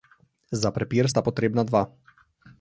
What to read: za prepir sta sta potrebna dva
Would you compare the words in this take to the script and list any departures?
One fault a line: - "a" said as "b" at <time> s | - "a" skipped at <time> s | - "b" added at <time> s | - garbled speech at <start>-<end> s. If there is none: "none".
- "sta" skipped at 1.2 s